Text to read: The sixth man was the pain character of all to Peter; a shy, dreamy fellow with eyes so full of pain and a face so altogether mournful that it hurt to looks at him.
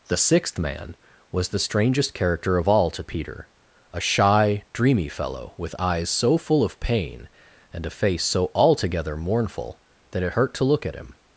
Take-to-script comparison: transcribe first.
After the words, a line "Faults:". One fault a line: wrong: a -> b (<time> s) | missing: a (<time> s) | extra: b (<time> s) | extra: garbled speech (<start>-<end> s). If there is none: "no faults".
The sixth man was the strangest character of all to Peter; a shy, dreamy fellow with eyes so full of pain and a face so altogether mournful that it hurt to look at him.
Faults:
wrong: pain -> strangest (1.6 s)
wrong: looks -> look (10.6 s)